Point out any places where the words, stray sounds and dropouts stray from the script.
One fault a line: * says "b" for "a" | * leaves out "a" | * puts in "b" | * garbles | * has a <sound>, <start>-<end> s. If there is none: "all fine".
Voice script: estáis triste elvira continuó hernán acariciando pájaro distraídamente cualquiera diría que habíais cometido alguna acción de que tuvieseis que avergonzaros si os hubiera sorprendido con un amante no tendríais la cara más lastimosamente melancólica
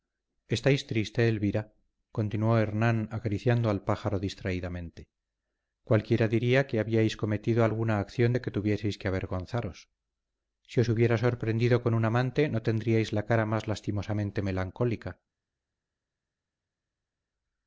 * puts in "al"